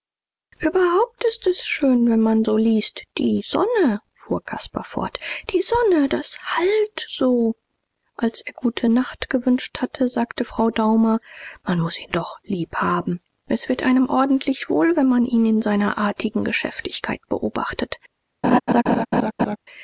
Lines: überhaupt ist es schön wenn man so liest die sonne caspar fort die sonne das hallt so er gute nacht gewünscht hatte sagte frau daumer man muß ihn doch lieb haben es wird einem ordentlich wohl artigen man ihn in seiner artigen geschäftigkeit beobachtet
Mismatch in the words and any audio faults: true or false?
true